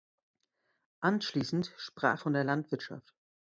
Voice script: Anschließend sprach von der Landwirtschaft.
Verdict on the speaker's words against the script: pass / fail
pass